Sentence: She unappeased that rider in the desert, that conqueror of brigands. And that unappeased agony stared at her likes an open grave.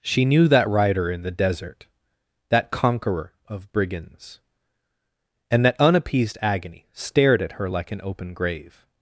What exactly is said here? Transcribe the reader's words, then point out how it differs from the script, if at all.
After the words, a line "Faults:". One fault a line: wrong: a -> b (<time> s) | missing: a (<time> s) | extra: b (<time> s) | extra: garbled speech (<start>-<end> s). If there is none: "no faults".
She knew that rider in the desert, that conqueror of brigands. And that unappeased agony stared at her like an open grave.
Faults:
wrong: unappeased -> knew (0.2 s)
wrong: likes -> like (7.7 s)